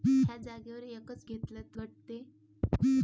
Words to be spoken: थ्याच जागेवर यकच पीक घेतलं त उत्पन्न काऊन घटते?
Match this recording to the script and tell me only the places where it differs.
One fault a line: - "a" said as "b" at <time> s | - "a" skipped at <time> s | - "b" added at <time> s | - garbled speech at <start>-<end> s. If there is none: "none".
- "पीक" skipped at 1.2 s
- "उत्पन्न काऊन" skipped at 1.8 s